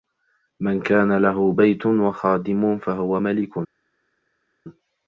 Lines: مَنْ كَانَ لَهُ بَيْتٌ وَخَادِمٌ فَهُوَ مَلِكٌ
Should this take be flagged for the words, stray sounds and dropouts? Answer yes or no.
no